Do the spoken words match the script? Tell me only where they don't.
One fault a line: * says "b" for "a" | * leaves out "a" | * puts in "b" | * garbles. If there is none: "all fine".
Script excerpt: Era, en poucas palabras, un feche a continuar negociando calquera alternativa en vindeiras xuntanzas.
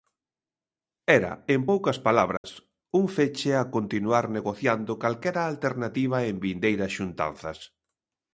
all fine